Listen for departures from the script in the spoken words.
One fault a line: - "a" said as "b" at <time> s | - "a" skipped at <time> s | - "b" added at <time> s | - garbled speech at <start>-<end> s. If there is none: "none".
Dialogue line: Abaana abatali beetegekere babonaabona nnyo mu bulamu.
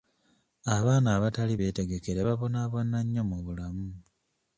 none